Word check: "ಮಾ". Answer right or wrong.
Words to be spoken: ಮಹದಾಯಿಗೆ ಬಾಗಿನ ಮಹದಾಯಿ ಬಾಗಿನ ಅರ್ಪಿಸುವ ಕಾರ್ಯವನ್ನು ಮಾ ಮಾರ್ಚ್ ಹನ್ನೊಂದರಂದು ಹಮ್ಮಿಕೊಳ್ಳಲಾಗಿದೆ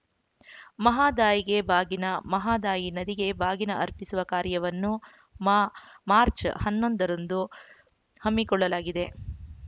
right